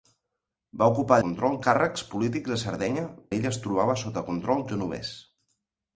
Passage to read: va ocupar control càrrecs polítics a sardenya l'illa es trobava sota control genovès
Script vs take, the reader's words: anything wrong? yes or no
no